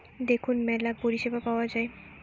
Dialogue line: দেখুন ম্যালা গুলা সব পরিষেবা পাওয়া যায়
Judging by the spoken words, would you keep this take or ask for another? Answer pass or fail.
fail